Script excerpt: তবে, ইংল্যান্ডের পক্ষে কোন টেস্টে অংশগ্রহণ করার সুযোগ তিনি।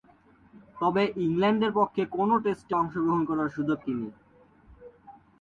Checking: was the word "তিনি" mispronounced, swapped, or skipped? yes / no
no